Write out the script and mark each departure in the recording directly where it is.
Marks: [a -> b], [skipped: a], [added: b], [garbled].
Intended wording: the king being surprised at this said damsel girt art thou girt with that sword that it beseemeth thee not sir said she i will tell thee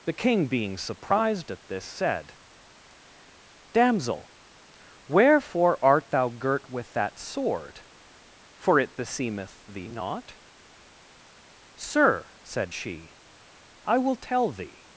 the king being surprised at this said damsel [girt -> wherefore] art thou girt with that sword [that -> for] it beseemeth thee not sir said she i will tell thee